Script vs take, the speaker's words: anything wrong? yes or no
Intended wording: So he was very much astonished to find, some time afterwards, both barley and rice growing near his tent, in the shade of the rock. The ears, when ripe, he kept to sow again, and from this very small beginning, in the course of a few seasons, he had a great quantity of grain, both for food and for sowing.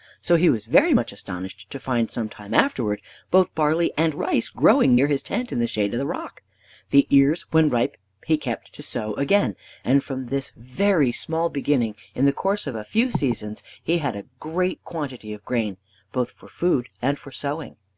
no